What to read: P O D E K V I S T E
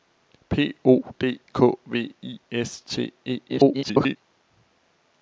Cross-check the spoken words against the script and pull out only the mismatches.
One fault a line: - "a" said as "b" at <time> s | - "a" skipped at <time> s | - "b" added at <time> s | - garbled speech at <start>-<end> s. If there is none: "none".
- "E" skipped at 1.4 s
- garbled speech at 3.5-4.2 s